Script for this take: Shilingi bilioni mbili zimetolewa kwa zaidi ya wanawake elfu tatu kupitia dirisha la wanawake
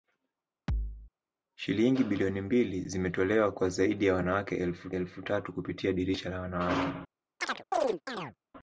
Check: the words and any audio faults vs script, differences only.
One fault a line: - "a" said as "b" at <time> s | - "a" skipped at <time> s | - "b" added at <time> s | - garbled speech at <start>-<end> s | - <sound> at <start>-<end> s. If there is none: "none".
- thud at 0.7-1.1 s
- "elfu" added at 4.9 s
- chirp at 7.4-8.4 s